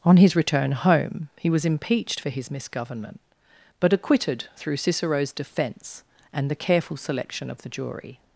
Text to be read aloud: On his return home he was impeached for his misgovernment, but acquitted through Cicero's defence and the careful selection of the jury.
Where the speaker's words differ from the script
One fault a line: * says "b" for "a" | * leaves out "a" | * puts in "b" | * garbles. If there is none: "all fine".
all fine